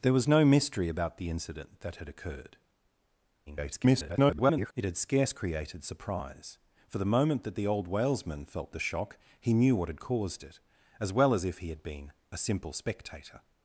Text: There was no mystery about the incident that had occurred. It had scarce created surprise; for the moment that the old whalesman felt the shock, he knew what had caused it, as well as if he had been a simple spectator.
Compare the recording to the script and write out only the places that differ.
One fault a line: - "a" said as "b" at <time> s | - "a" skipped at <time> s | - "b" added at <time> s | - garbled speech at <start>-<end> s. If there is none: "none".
- garbled speech at 3.5-4.7 s